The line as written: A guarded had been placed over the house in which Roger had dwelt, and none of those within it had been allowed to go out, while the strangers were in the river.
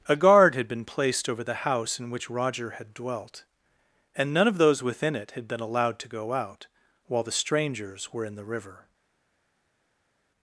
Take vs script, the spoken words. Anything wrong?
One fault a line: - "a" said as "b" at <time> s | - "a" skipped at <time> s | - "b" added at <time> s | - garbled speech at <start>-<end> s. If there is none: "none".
- "guarded" said as "guard" at 0.1 s